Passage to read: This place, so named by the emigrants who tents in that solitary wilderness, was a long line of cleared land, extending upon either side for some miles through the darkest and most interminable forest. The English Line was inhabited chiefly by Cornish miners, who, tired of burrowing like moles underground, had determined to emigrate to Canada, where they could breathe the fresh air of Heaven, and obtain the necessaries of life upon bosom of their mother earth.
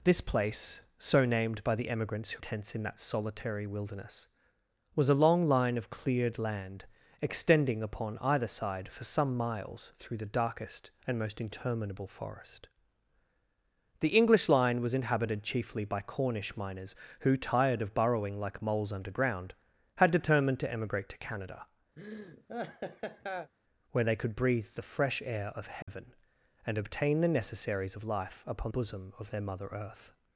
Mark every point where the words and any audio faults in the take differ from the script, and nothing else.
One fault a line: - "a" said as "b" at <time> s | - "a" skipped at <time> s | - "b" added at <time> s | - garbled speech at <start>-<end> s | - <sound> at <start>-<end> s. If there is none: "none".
- laugh at 22.0-23.5 s
- dropout at 25.8-25.9 s